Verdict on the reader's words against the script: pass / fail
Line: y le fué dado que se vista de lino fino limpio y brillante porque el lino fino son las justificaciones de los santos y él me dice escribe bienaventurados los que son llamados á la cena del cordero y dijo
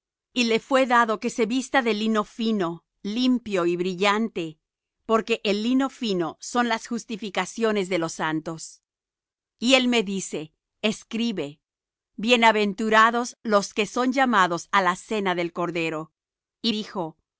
pass